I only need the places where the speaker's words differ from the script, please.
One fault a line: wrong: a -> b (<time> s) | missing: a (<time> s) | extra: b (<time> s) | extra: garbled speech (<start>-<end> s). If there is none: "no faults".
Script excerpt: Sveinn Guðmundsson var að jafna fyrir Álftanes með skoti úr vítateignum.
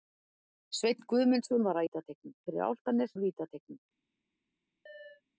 wrong: jafna -> vítateignum (1.8 s)
missing: með skoti (3.2 s)